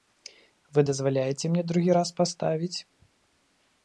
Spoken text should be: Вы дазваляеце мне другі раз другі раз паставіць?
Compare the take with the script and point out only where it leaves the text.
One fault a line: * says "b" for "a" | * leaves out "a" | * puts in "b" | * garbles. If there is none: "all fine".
* leaves out "другі раз"